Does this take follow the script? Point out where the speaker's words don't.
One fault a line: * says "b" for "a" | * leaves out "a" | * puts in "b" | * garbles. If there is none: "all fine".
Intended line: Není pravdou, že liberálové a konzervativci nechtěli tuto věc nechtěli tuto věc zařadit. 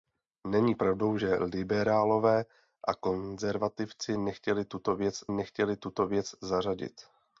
all fine